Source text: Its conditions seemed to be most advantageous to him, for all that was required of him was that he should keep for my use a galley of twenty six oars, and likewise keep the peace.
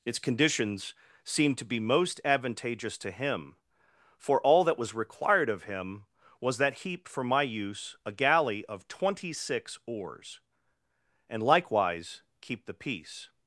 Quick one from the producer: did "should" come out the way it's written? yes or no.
no